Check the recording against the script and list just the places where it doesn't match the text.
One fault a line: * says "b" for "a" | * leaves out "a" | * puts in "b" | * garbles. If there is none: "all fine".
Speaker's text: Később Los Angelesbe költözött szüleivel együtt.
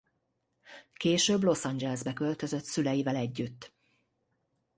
all fine